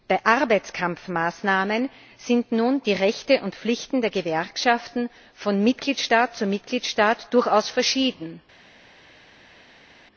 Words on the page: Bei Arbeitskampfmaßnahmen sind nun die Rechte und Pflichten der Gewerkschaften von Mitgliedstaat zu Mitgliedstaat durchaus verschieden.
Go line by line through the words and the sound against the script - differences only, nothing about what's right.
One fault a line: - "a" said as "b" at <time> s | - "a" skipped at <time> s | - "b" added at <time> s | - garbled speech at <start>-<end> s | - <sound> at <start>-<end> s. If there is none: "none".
none